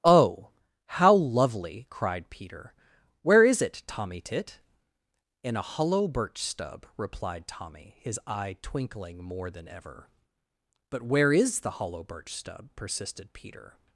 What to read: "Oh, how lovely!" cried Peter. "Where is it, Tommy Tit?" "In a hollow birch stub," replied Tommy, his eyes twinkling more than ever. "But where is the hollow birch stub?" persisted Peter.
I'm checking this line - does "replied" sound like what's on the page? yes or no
yes